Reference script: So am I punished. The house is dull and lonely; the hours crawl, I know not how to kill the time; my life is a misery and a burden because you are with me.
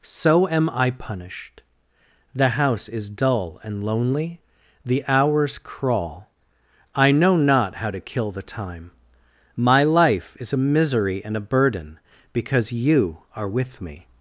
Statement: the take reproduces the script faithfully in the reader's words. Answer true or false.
true